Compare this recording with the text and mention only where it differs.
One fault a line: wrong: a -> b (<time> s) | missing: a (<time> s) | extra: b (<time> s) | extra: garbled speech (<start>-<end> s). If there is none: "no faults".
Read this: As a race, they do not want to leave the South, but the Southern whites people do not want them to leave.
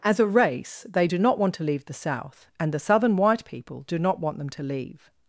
wrong: but -> and (2.6 s)
wrong: whites -> white (3.2 s)